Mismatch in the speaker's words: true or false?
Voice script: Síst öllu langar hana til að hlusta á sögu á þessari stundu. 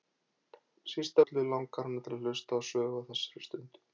false